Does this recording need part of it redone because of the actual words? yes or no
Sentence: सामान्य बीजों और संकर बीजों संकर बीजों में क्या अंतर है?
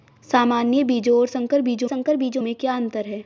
no